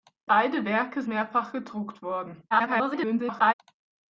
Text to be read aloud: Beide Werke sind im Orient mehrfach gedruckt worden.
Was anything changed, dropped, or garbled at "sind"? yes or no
yes